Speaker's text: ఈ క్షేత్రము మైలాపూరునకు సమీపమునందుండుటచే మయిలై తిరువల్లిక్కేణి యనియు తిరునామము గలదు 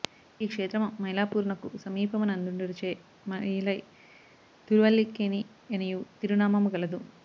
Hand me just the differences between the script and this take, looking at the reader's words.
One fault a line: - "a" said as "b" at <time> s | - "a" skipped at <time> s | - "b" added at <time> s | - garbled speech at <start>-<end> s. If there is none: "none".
none